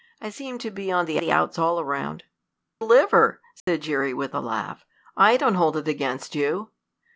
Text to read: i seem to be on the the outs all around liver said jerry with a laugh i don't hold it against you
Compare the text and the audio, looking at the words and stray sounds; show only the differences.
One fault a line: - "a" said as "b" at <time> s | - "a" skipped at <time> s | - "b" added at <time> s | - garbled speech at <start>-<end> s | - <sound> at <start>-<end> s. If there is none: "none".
- dropout at 3.6-3.7 s